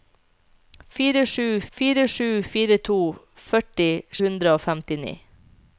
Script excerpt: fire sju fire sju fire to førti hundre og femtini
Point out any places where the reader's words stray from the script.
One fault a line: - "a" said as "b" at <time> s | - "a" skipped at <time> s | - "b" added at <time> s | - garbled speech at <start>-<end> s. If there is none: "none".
none